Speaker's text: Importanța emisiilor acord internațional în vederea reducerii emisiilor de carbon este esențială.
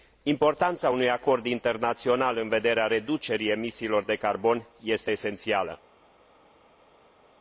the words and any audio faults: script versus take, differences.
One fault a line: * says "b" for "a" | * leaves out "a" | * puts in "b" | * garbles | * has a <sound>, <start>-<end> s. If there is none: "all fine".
* says "unui" for "emisiilor"